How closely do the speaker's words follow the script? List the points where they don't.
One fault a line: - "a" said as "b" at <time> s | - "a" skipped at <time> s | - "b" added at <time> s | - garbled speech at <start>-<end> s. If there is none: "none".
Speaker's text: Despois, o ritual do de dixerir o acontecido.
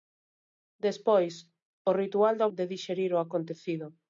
none